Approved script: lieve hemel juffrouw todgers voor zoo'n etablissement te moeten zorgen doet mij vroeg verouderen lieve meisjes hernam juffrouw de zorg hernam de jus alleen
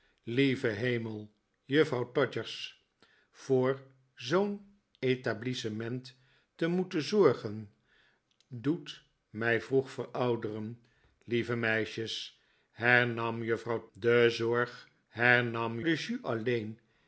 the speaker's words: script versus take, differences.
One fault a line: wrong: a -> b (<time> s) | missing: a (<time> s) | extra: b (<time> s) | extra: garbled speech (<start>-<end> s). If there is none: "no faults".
no faults